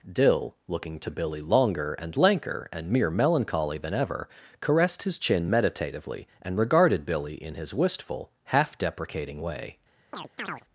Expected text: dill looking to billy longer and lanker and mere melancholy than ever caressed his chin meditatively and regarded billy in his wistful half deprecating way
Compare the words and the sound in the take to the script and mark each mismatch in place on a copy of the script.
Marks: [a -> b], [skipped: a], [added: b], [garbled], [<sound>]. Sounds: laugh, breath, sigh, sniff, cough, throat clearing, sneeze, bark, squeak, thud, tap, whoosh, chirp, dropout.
dill looking to billy longer and lanker and mere melancholy than ever caressed his chin meditatively and regarded billy in his wistful half deprecating way [chirp]